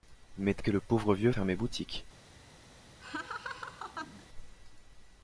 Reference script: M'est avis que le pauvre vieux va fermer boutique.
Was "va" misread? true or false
true